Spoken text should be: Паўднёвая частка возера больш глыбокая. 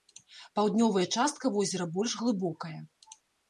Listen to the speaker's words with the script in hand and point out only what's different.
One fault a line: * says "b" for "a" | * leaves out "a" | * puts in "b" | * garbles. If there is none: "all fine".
all fine